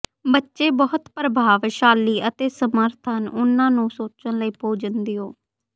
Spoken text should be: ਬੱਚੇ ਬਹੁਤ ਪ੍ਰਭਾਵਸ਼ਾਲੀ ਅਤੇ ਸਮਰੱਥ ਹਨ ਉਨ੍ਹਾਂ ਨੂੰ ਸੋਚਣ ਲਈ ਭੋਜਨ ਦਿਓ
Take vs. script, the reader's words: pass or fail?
pass